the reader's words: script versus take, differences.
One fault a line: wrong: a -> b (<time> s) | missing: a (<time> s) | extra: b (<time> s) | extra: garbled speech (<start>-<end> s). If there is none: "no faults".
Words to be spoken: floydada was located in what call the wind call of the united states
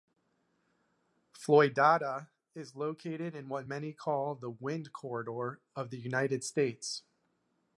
wrong: was -> is (2.5 s)
extra: many (3.7 s)
wrong: call -> corridor (4.9 s)